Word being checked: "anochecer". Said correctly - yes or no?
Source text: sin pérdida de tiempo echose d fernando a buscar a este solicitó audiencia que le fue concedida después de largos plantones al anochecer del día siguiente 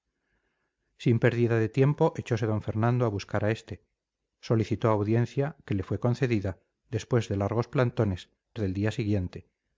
no